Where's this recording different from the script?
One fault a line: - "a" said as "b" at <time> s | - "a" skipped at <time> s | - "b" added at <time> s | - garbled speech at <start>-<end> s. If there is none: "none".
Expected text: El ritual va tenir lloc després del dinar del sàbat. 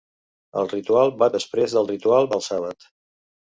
- "tenir lloc" skipped at 1.3 s
- "dinar" said as "ritual" at 1.9 s